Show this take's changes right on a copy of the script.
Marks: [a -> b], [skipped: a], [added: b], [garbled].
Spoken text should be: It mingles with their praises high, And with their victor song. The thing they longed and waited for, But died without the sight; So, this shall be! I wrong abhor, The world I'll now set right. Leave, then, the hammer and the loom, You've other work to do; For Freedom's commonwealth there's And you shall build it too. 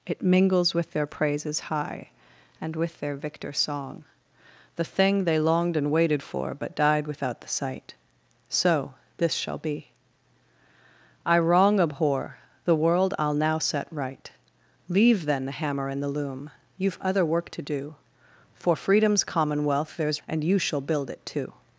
It mingles with their praises high, And with their victor song. The thing they longed and waited for, But died without the sight; So, this shall be! I wrong abhor, The world I'll now set right. Leave, then, the hammer and the loom, You've other work to do; For Freedom's commonwealth there's And you shall build it too.